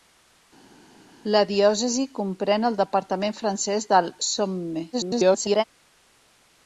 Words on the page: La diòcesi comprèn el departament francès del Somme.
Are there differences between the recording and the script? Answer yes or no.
yes